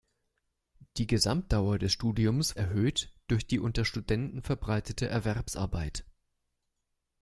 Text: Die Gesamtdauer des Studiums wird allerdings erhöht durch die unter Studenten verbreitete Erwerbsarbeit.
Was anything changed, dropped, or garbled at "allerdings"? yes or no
yes